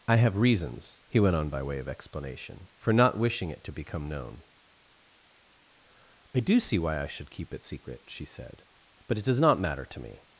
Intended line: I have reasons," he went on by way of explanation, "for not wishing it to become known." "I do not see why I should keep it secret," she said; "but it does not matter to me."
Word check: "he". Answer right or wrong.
right